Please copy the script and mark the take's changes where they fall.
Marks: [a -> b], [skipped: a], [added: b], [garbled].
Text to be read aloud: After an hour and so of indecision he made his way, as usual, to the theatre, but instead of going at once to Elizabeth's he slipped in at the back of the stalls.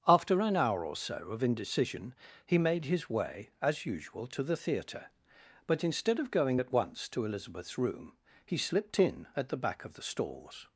After an hour [and -> or] so of indecision he made his way, as usual, to the theatre, but instead of going at once to Elizabeth's [added: room] he slipped in at the back of the stalls.